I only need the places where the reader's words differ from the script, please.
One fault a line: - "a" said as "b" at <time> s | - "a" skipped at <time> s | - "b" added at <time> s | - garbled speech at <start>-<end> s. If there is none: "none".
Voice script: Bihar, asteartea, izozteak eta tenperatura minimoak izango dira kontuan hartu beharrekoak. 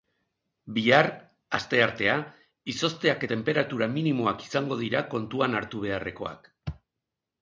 - "eta" skipped at 3.3 s